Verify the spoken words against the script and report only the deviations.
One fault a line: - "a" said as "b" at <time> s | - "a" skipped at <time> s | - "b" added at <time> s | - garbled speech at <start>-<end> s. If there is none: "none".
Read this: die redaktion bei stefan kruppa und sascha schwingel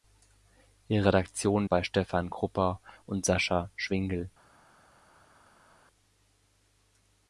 none